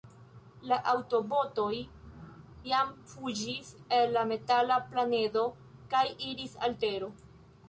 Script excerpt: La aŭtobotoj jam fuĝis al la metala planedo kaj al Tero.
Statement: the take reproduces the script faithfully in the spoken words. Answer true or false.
false